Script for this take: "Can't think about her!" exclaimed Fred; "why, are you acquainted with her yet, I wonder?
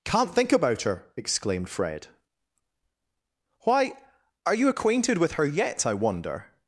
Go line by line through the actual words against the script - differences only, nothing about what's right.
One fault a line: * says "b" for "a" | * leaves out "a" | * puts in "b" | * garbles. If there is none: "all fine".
all fine